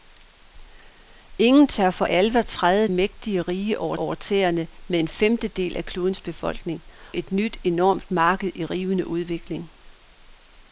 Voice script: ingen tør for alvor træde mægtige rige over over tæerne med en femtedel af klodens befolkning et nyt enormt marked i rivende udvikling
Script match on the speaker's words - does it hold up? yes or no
yes